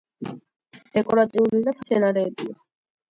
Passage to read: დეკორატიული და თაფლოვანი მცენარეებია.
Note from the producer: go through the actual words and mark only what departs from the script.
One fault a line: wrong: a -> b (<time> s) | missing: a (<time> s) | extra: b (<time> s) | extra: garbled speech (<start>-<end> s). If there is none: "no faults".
missing: თაფლოვანი (1.8 s)